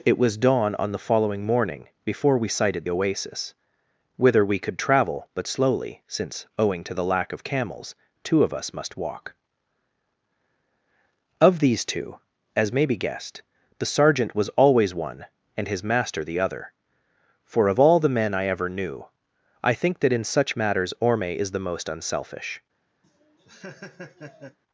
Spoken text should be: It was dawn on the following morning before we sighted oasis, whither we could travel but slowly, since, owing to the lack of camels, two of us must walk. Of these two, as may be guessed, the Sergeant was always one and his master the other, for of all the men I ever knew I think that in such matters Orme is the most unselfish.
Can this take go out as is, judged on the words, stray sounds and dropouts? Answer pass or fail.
fail